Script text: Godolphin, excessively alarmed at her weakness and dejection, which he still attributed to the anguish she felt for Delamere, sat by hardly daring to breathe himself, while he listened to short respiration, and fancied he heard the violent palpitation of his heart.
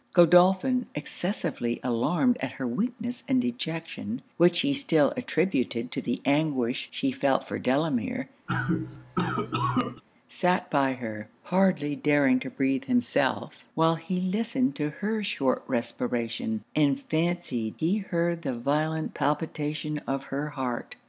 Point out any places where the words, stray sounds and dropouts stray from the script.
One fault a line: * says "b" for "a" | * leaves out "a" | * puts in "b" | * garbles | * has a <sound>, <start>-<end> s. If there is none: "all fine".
* has a cough, 8.5-10.0 s
* puts in "her"
* puts in "her"
* says "her" for "his"